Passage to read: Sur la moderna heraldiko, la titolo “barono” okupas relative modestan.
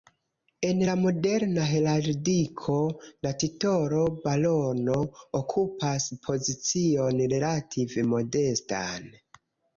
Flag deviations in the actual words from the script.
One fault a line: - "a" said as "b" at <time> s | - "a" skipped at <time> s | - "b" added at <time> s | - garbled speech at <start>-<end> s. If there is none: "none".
- "Sur" said as "En" at 0.7 s
- "pozicion" added at 6.3 s